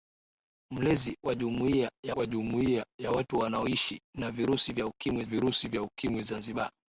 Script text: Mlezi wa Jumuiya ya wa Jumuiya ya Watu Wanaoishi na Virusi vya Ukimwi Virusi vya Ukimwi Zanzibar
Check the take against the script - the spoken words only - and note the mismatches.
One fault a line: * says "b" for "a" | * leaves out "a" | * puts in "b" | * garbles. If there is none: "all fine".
all fine